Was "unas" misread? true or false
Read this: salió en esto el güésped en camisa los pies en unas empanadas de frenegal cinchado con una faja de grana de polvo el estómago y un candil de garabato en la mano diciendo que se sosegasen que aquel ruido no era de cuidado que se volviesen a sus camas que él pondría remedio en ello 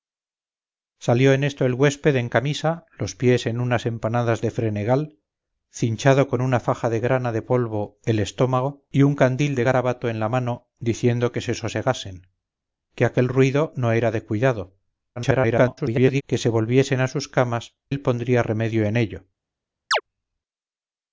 false